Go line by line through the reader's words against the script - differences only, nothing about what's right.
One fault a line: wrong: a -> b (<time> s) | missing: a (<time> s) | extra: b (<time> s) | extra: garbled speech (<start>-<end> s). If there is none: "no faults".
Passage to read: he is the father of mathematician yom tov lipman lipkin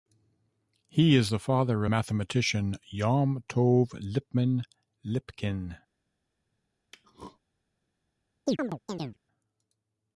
missing: of (1.9 s)